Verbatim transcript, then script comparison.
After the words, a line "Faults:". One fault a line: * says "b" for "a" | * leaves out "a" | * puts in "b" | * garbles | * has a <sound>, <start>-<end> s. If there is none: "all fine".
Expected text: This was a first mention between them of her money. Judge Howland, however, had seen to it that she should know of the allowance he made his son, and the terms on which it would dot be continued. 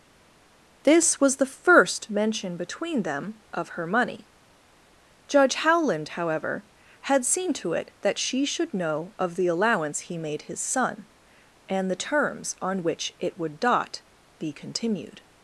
This was the first mention between them of her money. Judge Howland, however, had seen to it that she should know of the allowance he made his son, and the terms on which it would dot be continued.
Faults:
* says "the" for "a"